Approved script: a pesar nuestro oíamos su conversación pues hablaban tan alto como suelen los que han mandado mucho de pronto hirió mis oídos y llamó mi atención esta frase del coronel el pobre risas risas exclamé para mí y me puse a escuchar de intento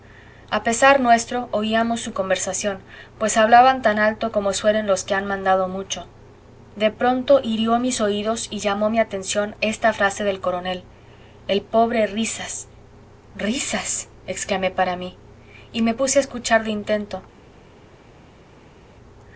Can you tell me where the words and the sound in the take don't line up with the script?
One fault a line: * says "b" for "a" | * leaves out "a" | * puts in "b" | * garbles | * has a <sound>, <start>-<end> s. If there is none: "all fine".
all fine